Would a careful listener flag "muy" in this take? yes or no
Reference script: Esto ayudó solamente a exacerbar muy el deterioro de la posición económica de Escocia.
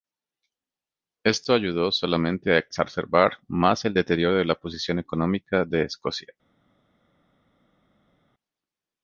yes